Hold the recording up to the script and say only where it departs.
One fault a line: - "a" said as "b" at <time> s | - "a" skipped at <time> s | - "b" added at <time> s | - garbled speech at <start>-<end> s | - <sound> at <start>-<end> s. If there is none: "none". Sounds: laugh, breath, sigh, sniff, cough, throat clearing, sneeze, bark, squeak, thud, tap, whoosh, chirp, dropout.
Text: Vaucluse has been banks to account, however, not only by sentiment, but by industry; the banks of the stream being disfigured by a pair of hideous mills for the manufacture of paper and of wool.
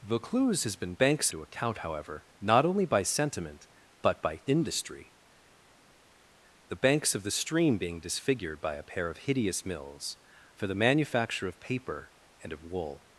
none